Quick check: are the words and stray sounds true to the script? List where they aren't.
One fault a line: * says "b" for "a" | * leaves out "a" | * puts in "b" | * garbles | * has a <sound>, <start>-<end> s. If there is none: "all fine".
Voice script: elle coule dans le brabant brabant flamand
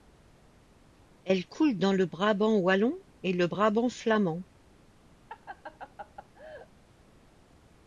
* puts in "wallon et le"
* has a laugh, 5.3-6.7 s